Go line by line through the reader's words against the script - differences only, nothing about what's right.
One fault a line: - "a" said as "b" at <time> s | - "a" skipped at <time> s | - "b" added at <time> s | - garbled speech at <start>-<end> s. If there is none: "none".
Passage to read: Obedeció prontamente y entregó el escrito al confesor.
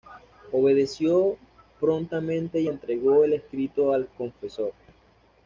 none